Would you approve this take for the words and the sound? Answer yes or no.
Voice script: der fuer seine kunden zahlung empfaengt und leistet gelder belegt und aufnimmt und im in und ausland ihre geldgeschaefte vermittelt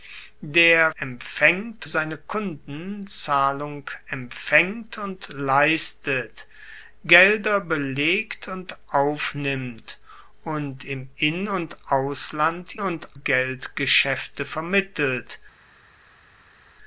no